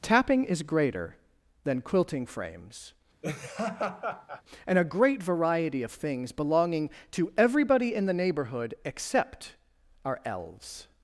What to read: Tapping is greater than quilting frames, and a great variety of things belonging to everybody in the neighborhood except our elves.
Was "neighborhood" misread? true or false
false